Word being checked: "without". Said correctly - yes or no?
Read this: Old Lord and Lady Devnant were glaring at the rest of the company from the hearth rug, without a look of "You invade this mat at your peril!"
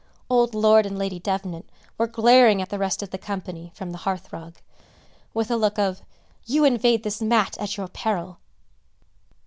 no